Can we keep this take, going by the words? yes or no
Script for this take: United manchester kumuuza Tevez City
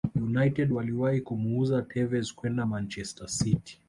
no